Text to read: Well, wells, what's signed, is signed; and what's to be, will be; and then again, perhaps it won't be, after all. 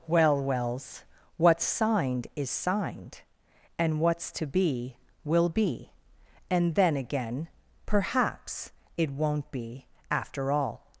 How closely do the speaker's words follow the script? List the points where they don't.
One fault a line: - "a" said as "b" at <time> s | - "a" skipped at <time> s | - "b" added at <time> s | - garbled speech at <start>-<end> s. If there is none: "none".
none